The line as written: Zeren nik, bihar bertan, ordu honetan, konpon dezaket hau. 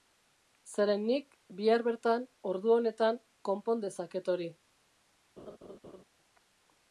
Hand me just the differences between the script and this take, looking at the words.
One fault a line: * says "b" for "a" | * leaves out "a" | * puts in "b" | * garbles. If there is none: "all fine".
* says "hori" for "hau"